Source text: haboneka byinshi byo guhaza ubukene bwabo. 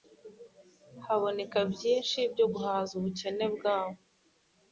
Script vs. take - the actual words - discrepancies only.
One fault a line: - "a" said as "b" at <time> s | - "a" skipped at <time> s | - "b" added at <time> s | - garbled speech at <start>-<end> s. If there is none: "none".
none